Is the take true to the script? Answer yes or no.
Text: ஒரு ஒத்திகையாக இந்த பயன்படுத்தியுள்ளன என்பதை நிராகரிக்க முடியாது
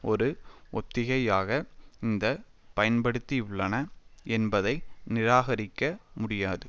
yes